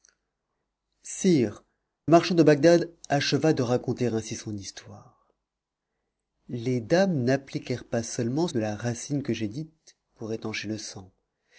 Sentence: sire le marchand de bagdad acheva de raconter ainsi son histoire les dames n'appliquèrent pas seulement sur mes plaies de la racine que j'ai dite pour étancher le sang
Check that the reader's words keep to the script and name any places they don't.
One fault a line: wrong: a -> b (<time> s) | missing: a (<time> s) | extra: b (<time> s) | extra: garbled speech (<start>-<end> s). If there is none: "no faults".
missing: le (1.6 s)
missing: sur mes plaies (8.5 s)